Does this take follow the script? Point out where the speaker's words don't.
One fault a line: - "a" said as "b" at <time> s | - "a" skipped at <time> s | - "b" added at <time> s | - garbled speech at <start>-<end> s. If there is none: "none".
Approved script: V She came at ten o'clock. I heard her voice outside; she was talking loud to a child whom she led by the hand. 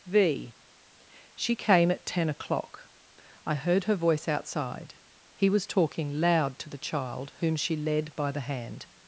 - "she" said as "he" at 5.3 s
- "a" said as "the" at 6.7 s